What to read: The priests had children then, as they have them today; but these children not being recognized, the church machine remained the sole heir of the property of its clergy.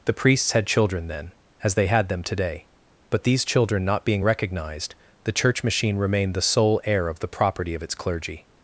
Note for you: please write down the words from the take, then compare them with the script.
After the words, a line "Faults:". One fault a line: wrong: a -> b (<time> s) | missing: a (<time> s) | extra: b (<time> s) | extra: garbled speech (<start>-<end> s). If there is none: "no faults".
The priests had children then, as they had them today; but these children not being recognized, the church machine remained the sole heir of the property of its clergy.
Faults:
wrong: have -> had (1.9 s)